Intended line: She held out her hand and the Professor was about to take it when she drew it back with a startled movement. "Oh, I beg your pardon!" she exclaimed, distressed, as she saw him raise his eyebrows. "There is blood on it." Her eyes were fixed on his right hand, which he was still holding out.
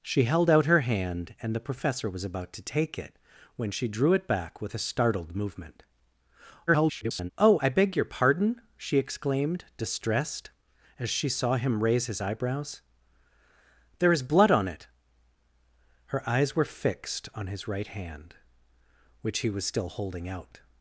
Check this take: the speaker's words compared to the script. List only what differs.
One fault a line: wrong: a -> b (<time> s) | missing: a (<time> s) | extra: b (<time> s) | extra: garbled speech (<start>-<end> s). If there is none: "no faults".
extra: garbled speech (6.7-7.3 s)